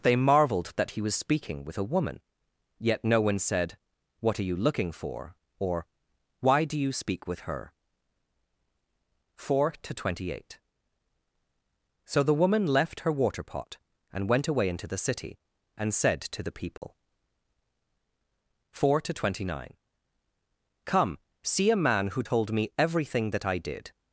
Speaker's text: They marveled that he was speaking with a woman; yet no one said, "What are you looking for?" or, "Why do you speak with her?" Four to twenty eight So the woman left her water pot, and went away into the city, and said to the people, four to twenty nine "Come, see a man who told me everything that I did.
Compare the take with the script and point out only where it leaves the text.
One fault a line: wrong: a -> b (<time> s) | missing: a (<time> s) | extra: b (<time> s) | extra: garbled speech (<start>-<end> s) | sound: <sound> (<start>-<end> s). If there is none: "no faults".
sound: dropout (16.8-16.8 s)